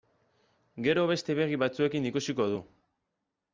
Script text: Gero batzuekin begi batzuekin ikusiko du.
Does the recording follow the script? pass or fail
fail